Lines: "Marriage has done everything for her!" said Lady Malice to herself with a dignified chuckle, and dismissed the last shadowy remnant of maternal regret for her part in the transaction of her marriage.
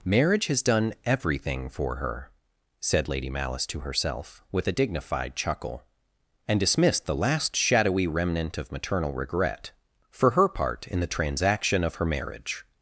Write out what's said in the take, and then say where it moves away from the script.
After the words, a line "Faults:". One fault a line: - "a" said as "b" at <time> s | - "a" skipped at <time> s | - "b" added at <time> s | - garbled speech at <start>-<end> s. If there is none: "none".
"Marriage has done everything for her!" said Lady Malice to herself with a dignified chuckle, and dismissed the last shadowy remnant of maternal regret for her part in the transaction of her marriage.
Faults:
none